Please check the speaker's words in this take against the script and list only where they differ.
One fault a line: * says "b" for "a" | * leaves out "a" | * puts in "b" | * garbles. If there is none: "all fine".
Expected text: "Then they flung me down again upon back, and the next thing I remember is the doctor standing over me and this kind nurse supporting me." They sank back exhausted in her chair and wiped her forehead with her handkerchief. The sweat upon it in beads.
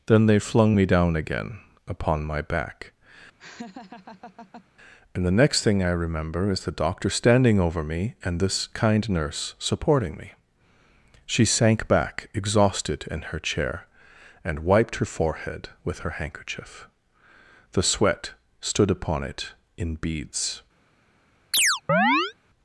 * puts in "my"
* says "She" for "They"
* puts in "stood"